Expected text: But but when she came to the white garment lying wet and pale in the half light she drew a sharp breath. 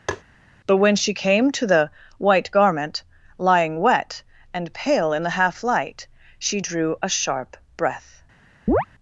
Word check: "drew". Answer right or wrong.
right